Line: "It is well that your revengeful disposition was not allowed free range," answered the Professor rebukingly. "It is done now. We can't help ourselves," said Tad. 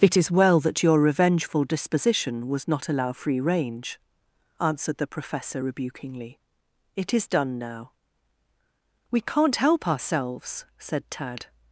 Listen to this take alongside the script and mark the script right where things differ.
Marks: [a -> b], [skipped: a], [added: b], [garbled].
"It is well that your revengeful disposition was not [allowed -> allow] free range," answered the Professor rebukingly. "It is done now. We can't help ourselves," said Tad.